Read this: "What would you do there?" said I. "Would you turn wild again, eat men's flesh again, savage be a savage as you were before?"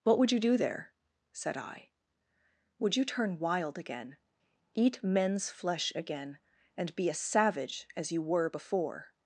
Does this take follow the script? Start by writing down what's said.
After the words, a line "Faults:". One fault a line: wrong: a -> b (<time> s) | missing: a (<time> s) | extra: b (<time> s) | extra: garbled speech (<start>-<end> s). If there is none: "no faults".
"What would you do there?" said I. "Would you turn wild again, eat men's flesh again, and be a savage as you were before?"
Faults:
wrong: savage -> and (6.8 s)